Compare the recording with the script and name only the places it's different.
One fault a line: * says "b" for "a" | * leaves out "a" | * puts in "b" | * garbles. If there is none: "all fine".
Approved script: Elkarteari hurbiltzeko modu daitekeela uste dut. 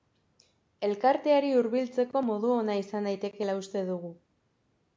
* puts in "ona izan"
* says "dugu" for "dut"